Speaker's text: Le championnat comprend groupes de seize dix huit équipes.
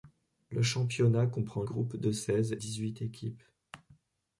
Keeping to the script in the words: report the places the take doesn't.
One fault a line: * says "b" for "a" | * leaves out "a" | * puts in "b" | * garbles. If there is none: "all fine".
all fine